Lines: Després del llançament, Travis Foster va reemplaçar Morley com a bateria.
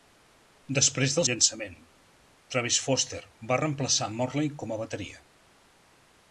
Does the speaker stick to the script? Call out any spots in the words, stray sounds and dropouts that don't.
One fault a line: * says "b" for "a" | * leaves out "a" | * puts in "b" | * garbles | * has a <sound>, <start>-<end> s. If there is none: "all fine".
all fine